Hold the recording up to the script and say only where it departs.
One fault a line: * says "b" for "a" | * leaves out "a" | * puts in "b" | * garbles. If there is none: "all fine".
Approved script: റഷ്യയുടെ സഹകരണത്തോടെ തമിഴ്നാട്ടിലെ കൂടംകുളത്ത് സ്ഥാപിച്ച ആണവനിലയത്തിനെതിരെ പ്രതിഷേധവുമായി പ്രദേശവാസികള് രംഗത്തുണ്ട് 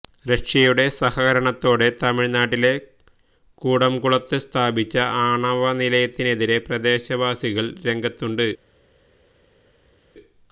* leaves out "പ്രതിഷേധവുമായി"